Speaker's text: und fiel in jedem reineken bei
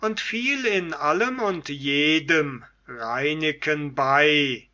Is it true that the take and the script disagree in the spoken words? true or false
true